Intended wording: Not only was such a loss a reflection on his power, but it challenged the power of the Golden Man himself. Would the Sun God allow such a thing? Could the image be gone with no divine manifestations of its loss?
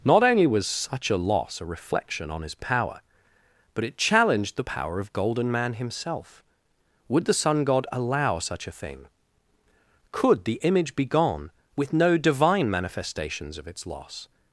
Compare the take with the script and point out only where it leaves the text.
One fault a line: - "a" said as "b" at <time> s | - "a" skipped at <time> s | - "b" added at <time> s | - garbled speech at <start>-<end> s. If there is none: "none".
- "the" skipped at 5.1 s